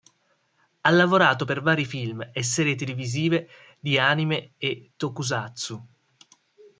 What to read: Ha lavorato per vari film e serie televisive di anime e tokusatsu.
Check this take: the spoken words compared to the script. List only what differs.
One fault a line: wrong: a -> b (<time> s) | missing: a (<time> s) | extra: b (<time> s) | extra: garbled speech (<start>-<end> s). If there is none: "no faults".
no faults